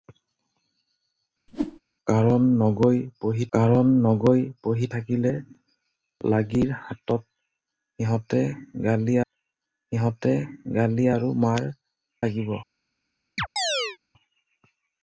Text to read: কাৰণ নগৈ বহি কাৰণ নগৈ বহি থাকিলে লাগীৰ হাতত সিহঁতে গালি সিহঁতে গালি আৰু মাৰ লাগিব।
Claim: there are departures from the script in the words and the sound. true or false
true